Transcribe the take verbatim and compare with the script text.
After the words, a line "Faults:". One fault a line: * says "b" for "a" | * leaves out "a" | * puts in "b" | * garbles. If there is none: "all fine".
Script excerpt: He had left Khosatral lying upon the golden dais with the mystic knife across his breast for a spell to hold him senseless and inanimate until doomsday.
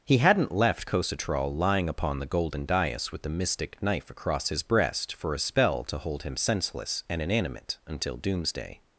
He hadn't left Khosatral lying upon the golden dais with the mystic knife across his breast for a spell to hold him senseless and inanimate until doomsday.
Faults:
* says "hadn't" for "had"